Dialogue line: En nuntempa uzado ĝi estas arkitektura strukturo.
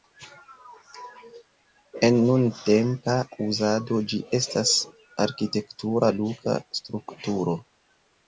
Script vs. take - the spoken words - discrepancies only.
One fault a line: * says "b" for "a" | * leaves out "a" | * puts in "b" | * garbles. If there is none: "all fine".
* puts in "luka"